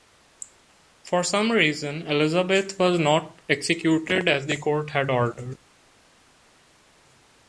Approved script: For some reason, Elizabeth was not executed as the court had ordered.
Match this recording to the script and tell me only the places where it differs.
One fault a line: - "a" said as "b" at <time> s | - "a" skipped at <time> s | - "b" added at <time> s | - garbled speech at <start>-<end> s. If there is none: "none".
none